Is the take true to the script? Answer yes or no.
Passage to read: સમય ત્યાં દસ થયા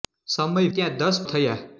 yes